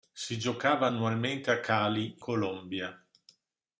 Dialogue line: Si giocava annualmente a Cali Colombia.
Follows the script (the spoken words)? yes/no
yes